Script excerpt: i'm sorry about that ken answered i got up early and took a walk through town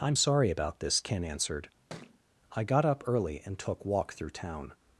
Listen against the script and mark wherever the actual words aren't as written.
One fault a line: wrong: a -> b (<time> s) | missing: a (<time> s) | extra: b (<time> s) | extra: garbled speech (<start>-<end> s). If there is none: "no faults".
wrong: that -> this (0.8 s)
missing: a (3.8 s)